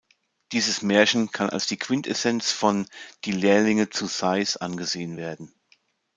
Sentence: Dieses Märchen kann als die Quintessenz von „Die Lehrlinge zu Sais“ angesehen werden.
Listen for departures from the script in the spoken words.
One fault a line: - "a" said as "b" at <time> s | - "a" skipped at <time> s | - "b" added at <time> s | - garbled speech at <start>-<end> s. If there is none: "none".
none